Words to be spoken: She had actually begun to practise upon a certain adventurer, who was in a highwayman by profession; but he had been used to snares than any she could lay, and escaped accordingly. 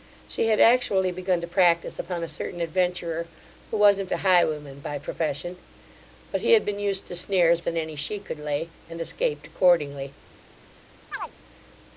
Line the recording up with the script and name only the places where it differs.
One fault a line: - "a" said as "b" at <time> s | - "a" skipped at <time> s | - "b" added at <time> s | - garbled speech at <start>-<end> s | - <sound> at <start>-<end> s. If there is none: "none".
- chirp at 11.1-11.3 s